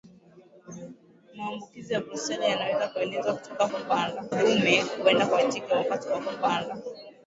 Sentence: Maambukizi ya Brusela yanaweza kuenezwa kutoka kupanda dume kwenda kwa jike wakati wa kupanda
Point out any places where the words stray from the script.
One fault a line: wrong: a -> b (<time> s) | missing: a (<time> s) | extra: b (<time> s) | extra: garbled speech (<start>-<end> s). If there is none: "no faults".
no faults